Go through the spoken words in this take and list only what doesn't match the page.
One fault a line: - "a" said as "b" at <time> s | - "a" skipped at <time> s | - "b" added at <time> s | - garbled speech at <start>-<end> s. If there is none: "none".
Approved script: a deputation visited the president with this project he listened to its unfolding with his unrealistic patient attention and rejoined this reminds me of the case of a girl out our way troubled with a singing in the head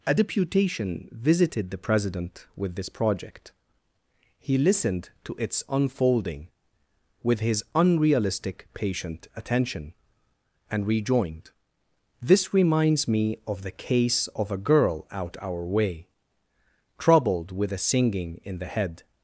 none